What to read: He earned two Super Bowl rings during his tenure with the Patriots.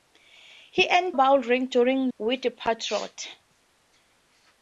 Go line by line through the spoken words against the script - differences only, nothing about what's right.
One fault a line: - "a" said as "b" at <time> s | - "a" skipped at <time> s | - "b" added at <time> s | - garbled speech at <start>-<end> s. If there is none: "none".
- "two Super" skipped at 1.1 s
- "his tenure" skipped at 2.1 s